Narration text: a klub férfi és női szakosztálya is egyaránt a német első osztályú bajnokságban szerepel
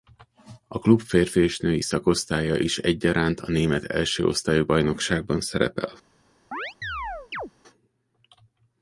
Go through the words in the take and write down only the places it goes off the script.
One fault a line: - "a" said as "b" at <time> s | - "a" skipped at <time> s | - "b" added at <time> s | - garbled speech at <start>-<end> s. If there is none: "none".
none